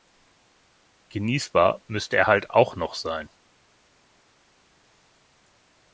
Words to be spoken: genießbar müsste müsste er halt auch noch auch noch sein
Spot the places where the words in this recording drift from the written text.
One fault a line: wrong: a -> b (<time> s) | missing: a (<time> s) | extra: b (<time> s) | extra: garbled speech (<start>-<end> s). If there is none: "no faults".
missing: müsste (2.2 s)
missing: auch noch (2.9 s)